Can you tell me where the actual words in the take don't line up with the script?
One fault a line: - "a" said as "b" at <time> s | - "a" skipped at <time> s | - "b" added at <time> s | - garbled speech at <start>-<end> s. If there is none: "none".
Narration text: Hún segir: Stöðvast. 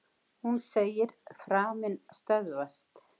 - "Framinn" added at 1.4 s